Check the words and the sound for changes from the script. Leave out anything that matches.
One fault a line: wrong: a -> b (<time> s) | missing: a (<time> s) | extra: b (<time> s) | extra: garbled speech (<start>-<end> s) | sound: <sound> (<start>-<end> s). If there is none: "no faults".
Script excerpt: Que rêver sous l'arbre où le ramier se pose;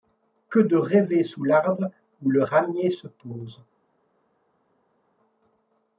extra: de (0.6 s)